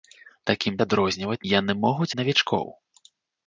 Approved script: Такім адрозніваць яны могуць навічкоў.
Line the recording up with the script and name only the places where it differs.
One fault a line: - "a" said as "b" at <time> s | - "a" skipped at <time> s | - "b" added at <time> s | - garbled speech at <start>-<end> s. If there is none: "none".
none